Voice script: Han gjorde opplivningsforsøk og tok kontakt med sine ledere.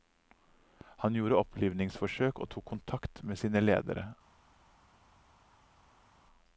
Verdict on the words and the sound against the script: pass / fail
pass